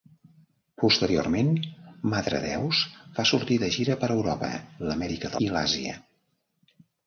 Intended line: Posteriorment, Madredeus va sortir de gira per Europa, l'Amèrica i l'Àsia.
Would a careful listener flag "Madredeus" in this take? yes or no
no